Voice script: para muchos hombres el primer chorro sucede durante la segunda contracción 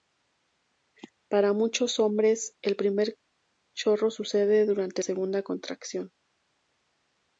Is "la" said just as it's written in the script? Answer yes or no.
no